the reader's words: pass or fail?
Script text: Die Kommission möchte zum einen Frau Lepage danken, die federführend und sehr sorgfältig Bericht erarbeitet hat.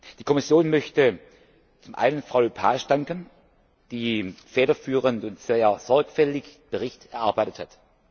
pass